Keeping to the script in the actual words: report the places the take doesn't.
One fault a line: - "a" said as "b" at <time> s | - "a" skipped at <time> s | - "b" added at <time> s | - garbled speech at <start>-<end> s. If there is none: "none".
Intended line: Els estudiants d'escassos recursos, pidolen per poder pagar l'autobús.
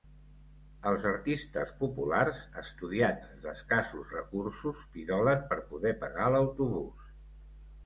- "artistes populars" added at 1.1 s